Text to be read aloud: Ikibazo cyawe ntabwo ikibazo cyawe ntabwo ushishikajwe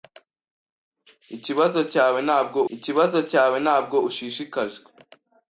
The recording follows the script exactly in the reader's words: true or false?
true